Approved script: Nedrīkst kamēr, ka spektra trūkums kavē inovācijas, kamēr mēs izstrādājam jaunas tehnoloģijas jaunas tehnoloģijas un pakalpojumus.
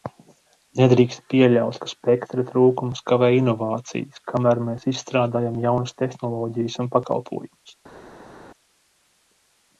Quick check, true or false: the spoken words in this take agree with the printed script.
false